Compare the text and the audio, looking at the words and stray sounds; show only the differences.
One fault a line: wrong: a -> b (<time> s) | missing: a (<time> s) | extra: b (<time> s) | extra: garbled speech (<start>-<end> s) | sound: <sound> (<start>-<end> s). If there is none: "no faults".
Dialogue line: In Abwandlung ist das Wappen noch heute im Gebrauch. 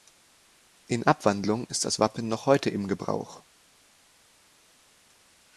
no faults